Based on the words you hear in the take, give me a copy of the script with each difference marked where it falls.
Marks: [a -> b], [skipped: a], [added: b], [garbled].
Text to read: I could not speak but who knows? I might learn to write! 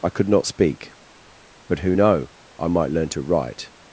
I could not speak but who [knows? -> know] I might learn to write!